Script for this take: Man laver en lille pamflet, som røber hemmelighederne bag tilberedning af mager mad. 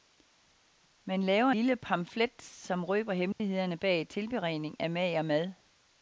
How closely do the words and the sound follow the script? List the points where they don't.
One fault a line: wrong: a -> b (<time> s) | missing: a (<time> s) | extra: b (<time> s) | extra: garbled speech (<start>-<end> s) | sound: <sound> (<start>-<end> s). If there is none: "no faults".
missing: en (1.5 s)
sound: dropout (3.3-3.4 s)